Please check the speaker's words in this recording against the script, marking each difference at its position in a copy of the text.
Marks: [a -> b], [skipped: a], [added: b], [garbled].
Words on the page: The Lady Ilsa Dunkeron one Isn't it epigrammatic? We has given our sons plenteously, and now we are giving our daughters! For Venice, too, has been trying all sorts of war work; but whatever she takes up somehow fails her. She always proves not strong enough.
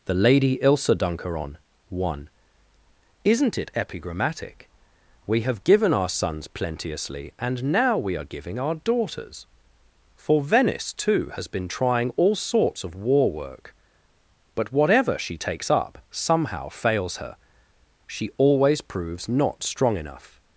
The Lady Ilsa Dunkeron one Isn't it epigrammatic? We [has -> have] given our sons plenteously, and now we are giving our daughters! For Venice, too, has been trying all sorts of war work; but whatever she takes up somehow fails her. She always proves not strong enough.